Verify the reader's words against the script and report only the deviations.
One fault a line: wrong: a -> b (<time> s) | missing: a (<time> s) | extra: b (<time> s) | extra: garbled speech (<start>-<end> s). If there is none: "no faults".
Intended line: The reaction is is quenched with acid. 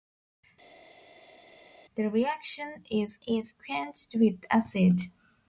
no faults